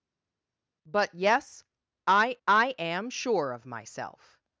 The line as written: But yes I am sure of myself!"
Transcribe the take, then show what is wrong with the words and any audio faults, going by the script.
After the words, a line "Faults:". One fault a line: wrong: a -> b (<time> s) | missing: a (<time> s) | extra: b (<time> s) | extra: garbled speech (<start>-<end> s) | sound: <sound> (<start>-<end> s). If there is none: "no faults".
But yes I I am sure of myself!"
Faults:
extra: I (2.5 s)